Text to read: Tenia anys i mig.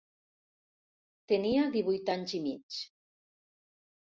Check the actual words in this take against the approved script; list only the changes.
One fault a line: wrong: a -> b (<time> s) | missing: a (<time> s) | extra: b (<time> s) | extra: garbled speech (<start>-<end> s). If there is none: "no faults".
extra: divuit (1.8 s)